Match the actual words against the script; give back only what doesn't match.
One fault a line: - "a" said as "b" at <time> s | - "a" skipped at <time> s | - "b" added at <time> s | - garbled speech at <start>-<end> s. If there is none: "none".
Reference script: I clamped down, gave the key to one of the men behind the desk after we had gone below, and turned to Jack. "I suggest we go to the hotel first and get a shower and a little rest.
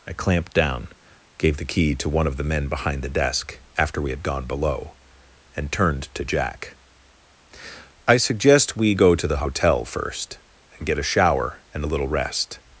none